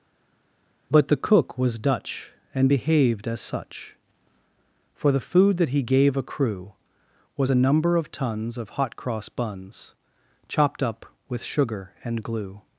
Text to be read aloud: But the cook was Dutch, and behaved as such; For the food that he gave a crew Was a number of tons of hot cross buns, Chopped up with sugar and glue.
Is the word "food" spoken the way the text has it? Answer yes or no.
yes